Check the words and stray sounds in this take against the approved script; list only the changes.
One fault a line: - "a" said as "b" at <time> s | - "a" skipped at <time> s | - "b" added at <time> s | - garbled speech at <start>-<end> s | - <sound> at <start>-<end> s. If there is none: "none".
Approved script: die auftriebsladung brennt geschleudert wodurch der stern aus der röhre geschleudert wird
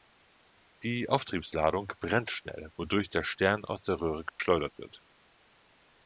- "geschleudert" said as "schnell" at 2.3 s
- dropout at 4.3-4.4 s